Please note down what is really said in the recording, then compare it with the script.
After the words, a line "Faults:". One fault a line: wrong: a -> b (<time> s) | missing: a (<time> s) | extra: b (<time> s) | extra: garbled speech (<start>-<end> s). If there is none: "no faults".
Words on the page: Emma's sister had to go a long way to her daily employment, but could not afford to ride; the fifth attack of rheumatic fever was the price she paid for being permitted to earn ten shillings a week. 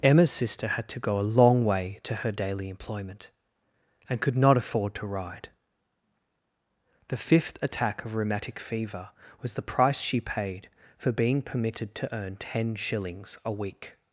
Emma's sister had to go a long way to her daily employment, and could not afford to ride; the fifth attack of rheumatic fever was the price she paid for being permitted to earn ten shillings a week.
Faults:
wrong: but -> and (4.1 s)